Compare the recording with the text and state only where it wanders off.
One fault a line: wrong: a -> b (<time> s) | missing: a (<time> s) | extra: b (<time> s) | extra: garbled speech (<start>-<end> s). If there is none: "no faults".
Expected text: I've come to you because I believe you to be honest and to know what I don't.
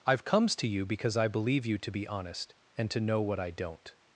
wrong: come -> comes (0.2 s)